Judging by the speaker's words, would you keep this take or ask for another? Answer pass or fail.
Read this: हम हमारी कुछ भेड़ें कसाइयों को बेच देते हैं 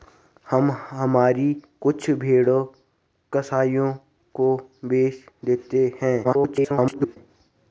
fail